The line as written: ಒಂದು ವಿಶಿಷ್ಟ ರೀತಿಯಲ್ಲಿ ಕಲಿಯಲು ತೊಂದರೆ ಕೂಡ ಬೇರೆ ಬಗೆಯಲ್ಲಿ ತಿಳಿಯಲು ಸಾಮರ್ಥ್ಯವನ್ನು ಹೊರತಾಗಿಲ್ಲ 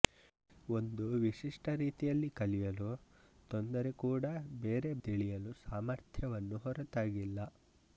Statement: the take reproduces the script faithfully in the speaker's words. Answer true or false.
false